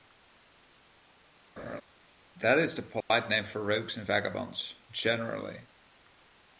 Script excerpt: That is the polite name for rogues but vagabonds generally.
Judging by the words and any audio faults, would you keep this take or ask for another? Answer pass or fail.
fail